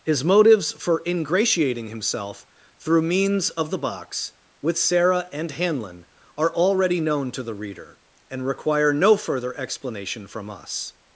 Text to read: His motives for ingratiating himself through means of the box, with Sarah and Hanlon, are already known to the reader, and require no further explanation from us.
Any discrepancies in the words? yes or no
no